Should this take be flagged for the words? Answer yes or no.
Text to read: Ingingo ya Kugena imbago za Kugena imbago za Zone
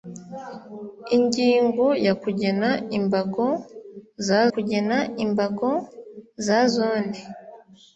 no